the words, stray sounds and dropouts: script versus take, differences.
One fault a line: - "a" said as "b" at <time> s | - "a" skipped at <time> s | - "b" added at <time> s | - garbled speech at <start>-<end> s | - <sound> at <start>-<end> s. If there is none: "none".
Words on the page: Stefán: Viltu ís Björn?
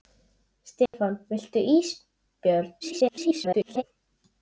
- dropout at 0.9-0.9 s
- garbled speech at 2.8-3.8 s